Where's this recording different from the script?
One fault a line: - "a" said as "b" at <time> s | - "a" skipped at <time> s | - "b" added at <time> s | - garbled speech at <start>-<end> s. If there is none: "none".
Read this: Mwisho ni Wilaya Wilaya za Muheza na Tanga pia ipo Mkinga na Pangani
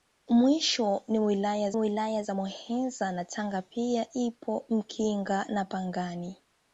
none